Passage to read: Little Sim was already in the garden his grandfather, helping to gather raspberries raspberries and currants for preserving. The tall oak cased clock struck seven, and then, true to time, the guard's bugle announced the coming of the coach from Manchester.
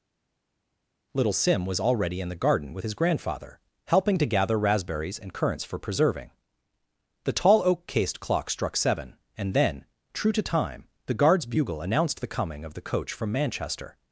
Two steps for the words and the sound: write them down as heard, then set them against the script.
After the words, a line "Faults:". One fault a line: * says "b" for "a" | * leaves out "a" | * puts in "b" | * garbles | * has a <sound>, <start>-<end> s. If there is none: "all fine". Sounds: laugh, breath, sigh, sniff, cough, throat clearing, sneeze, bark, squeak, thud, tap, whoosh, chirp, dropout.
Little Sim was already in the garden with his grandfather, helping to gather raspberries and currants for preserving. The tall oak cased clock struck seven, and then, true to time, the guard's bugle announced the coming of the coach from Manchester.
Faults:
* puts in "with"
* leaves out "raspberries"